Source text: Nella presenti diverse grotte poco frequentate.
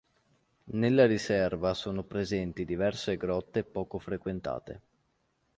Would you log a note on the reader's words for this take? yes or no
yes